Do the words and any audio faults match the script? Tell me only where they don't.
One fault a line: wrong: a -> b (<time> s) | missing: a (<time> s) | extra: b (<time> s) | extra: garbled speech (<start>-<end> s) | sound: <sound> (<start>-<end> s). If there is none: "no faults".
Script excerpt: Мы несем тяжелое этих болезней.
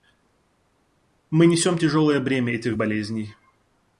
extra: бремя (2.2 s)